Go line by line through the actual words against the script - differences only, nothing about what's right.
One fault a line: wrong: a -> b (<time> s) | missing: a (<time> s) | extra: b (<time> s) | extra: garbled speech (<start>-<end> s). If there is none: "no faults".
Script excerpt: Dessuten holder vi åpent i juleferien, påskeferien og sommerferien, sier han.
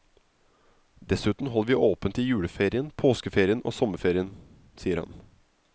no faults